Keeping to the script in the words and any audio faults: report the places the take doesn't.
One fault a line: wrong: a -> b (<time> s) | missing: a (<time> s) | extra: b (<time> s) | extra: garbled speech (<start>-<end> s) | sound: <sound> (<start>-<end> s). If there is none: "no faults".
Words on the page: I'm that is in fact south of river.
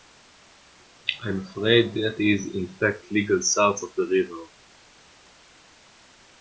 extra: afraid (1.4 s)
extra: legal (3.1 s)
extra: the (4.0 s)